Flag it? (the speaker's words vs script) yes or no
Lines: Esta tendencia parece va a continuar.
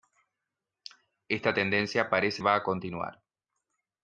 no